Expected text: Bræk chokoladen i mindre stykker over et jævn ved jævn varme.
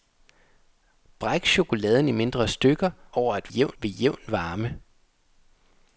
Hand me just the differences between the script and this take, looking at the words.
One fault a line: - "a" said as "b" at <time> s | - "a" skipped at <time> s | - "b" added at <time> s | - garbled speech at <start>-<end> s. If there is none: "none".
none